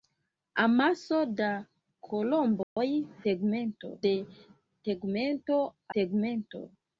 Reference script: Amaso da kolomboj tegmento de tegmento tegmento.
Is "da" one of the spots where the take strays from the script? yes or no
no